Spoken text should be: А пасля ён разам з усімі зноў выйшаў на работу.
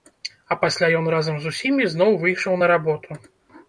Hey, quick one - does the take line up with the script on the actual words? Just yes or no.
yes